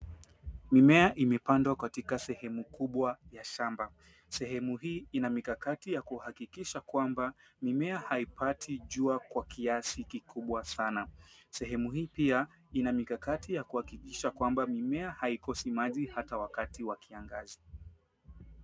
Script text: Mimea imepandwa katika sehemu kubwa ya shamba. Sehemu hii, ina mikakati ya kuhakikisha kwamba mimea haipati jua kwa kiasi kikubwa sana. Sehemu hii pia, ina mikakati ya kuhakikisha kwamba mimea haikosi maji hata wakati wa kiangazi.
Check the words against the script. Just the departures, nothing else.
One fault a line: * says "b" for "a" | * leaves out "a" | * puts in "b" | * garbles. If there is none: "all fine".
all fine